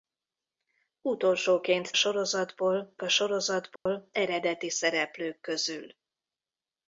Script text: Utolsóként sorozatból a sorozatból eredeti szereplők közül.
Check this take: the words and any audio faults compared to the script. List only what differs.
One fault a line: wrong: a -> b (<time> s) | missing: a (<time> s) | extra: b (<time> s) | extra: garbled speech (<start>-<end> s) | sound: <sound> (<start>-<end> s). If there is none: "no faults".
sound: dropout (3.8-3.9 s)